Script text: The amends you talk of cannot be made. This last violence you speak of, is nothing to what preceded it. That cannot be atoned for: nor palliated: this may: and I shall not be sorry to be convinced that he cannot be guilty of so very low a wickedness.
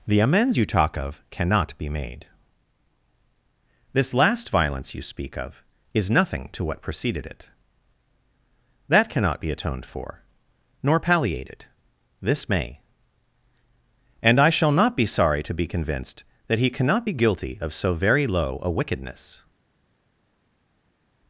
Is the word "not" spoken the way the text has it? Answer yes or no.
yes